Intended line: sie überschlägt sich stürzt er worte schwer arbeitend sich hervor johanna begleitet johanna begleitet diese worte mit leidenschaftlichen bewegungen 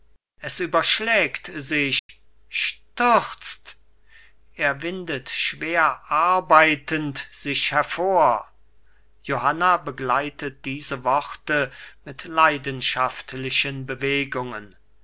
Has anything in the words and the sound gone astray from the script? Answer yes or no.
yes